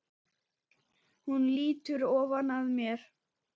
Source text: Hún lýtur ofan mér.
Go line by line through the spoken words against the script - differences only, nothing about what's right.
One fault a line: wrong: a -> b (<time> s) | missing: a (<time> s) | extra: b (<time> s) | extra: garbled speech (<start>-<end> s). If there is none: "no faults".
extra: að (2.6 s)